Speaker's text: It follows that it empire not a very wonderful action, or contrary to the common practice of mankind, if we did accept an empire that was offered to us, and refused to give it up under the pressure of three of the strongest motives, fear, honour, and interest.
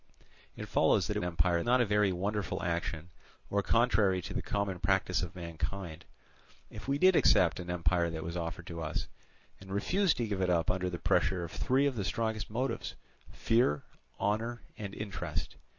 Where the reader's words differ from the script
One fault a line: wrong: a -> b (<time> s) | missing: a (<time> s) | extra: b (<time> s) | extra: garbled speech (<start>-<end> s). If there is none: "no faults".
no faults